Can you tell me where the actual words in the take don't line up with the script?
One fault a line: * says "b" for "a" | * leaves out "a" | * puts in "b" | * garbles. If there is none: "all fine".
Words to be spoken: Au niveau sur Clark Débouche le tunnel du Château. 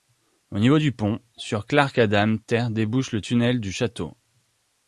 * puts in "du pont"
* puts in "Ádám tér"